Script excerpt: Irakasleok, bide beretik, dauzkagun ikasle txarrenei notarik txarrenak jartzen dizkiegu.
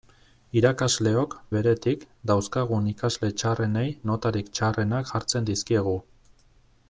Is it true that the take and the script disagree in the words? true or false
true